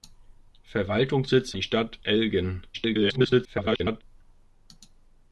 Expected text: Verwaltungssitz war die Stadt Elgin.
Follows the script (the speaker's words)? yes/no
no